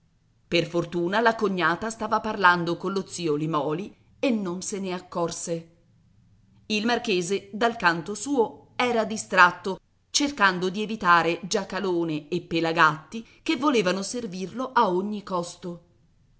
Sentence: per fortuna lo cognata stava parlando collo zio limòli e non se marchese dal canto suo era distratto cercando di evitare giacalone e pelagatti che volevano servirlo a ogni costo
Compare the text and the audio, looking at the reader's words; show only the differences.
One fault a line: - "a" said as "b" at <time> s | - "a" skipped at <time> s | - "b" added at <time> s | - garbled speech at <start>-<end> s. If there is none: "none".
- "lo" said as "la" at 1.2 s
- "ne accorse il" added at 4.8 s